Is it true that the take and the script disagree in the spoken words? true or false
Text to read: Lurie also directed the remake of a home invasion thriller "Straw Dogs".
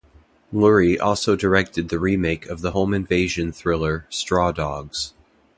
true